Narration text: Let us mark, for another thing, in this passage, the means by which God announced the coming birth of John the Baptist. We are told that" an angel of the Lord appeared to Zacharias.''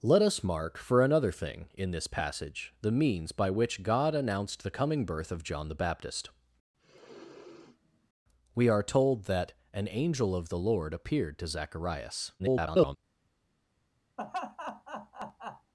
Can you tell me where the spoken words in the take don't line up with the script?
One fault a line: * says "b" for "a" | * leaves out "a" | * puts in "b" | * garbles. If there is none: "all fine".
* garbles